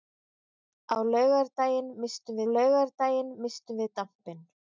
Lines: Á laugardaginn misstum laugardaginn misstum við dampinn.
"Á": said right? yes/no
yes